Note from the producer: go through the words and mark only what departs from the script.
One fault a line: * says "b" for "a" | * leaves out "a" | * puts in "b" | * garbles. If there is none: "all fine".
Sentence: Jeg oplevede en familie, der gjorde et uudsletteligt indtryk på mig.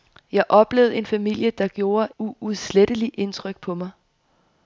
* leaves out "et"